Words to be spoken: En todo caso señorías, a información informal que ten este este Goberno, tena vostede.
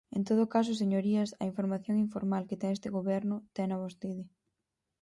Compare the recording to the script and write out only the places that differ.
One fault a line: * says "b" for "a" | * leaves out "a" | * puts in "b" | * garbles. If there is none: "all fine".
* leaves out "este"